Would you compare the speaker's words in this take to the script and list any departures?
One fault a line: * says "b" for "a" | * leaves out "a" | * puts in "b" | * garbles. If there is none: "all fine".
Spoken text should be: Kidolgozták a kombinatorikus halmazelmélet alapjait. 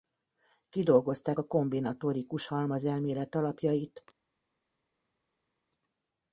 all fine